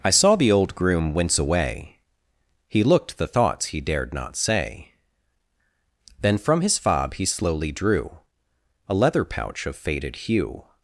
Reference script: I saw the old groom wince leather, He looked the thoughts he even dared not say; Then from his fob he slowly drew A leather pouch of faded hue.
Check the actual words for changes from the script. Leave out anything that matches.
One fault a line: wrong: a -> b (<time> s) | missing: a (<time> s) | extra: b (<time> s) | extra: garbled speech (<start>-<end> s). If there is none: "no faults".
wrong: leather -> away (1.4 s)
missing: even (3.8 s)